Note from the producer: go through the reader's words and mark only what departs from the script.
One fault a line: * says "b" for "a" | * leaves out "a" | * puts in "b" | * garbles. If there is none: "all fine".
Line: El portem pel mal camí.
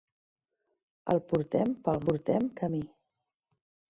* says "portem" for "mal"